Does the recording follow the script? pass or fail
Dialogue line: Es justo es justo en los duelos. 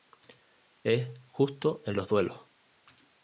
fail